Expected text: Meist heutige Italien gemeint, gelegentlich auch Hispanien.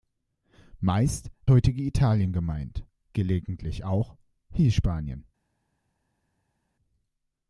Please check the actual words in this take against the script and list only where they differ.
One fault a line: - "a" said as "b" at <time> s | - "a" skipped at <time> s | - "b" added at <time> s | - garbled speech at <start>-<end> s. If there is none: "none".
none